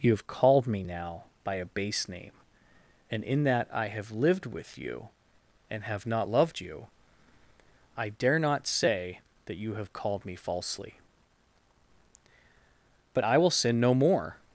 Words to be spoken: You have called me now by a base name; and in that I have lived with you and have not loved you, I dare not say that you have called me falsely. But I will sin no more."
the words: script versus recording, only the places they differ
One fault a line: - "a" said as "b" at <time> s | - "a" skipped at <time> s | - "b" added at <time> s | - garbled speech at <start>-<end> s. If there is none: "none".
none